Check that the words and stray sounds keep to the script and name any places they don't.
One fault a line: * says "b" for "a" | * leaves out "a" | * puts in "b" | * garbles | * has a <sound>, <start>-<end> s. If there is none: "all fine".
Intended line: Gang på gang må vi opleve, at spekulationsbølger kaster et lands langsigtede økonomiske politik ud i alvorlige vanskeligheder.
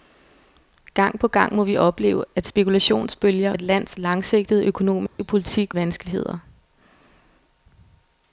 * leaves out "kaster"
* has a dropout, 5.1-5.2 s
* leaves out "ud i alvorlige"